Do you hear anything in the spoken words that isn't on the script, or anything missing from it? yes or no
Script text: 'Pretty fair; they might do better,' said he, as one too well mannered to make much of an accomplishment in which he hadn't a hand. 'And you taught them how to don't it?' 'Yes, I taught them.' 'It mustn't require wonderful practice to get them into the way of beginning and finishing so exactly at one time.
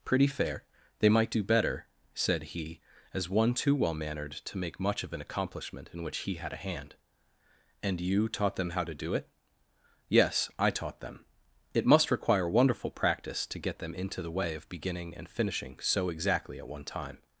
yes